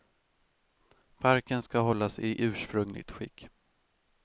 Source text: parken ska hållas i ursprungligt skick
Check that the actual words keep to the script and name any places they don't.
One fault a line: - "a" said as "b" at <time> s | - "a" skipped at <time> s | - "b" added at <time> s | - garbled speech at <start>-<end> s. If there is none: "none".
none